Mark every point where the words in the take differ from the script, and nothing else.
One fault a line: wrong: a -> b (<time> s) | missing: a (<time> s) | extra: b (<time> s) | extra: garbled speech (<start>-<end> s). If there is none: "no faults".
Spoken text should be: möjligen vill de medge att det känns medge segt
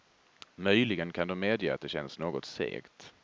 wrong: vill -> kan (1.1 s)
wrong: medge -> något (2.2 s)